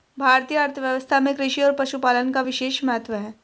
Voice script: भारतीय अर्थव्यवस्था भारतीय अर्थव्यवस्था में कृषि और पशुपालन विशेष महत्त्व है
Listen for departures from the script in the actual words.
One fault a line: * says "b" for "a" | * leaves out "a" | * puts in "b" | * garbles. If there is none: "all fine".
* leaves out "भारतीय अर्थव्यवस्था"
* puts in "का"